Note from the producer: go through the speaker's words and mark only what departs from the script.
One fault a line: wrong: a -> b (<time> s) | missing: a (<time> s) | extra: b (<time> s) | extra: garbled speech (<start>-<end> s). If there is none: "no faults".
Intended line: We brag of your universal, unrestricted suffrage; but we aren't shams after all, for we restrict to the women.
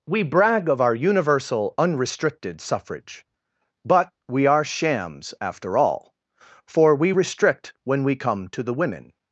wrong: your -> our (0.8 s)
wrong: aren't -> are (4.5 s)
extra: when we come (7.8 s)